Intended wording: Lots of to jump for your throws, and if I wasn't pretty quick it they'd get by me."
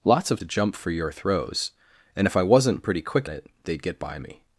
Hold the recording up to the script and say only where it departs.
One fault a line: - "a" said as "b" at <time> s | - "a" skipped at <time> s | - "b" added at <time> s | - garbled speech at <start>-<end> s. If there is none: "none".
none